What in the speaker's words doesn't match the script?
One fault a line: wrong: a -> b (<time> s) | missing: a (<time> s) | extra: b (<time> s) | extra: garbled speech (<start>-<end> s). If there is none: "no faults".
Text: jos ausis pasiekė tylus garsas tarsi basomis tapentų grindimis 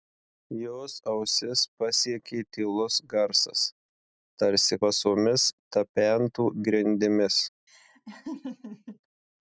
no faults